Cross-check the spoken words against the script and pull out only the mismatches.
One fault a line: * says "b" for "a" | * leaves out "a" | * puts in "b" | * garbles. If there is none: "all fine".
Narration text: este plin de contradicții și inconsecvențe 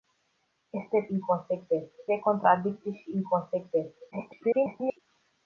* says "inconsecvențe" for "plin"
* garbles